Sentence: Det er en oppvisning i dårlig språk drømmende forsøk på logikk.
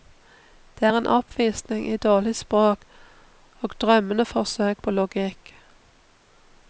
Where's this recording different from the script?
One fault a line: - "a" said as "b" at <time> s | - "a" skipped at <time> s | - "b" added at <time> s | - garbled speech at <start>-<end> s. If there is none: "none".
- "og" added at 3.6 s